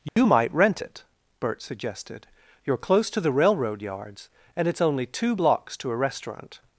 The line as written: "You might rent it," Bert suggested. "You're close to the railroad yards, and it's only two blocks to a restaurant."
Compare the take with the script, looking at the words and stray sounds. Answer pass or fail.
fail